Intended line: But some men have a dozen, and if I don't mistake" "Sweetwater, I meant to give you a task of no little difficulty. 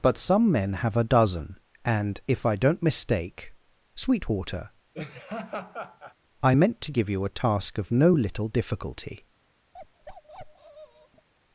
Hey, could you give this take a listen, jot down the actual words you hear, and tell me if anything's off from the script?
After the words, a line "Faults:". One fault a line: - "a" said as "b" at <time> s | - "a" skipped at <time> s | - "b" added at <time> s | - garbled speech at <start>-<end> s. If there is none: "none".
But some men have a dozen, and if I don't mistake" "Sweetwater, I meant to give you a task of no little difficulty.
Faults:
none